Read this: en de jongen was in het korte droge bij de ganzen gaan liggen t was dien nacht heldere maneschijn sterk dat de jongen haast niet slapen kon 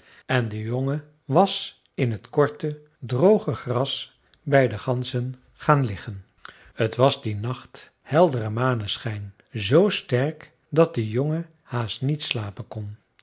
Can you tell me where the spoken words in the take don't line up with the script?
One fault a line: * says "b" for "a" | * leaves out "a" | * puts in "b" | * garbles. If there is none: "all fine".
* puts in "gras"
* puts in "z"